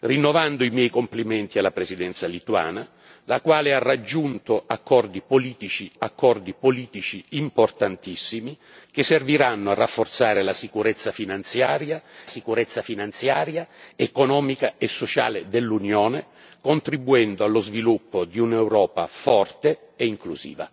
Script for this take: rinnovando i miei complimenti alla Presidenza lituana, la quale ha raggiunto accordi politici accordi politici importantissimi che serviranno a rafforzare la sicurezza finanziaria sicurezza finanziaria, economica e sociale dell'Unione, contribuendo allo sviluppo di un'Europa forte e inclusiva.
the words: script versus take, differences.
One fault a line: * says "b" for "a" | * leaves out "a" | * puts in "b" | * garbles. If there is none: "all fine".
all fine